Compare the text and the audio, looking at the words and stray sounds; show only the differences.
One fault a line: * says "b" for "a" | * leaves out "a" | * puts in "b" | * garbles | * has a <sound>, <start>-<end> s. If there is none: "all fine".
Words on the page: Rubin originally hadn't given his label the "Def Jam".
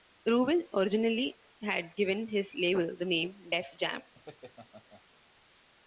* says "had" for "hadn't"
* puts in "name"
* has a laugh, 4.1-5.0 s